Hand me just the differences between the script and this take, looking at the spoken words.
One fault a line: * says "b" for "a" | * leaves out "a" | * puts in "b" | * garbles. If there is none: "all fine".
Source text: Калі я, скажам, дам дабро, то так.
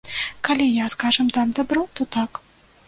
all fine